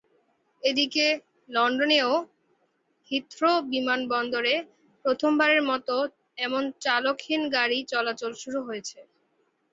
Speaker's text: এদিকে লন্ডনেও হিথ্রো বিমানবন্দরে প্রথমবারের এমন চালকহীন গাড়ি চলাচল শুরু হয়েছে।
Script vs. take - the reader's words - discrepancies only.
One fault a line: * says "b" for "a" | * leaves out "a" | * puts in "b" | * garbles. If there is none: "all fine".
* puts in "মতো"